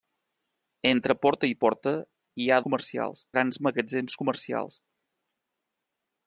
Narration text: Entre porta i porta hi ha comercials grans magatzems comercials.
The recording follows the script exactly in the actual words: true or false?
true